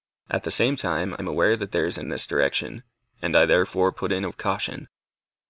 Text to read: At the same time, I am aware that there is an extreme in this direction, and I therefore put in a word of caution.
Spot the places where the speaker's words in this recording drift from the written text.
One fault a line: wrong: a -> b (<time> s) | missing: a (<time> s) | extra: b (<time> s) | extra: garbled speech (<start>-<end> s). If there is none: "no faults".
missing: I (1.1 s)
missing: extreme (2.0 s)
missing: word (4.3 s)